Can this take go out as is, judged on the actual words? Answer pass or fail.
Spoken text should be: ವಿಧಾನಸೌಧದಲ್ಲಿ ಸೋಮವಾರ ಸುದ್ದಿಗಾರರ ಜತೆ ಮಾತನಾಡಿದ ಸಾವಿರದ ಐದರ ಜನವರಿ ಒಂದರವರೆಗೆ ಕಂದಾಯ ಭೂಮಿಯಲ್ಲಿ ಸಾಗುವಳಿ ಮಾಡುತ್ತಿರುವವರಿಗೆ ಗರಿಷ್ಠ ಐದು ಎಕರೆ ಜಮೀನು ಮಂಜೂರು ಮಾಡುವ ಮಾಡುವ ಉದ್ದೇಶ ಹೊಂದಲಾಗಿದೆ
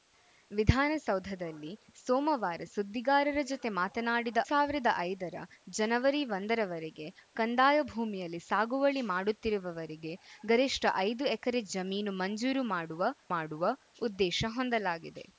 pass